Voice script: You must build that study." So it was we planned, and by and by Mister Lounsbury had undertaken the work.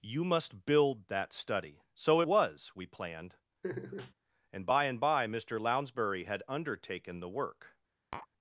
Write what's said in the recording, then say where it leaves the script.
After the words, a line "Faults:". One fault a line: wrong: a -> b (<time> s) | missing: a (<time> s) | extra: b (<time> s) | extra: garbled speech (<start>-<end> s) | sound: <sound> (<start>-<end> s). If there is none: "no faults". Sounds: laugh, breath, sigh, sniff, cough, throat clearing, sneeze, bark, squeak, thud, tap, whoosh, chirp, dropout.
You must build that study." So was we planned, and by and by Mister Lounsbury had undertaken the work.
Faults:
missing: it (2.2 s)
sound: laugh (3.6-4.1 s)
sound: tap (8.1-8.3 s)